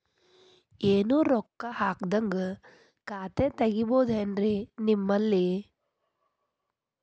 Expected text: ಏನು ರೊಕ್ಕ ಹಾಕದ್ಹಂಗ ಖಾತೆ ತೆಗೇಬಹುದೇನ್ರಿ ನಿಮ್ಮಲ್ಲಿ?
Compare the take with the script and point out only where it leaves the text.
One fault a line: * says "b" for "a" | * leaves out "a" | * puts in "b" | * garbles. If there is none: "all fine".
all fine